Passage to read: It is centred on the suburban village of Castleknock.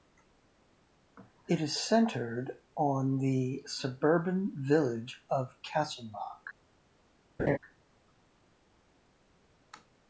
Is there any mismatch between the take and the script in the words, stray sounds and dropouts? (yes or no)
yes